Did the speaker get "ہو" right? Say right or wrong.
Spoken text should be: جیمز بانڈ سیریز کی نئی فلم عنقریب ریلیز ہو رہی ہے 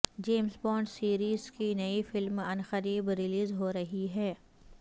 right